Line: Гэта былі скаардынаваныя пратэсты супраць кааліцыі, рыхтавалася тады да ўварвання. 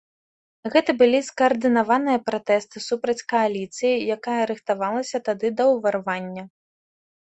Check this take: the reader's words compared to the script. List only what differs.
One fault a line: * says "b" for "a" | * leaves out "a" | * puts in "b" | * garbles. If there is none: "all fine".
* puts in "якая"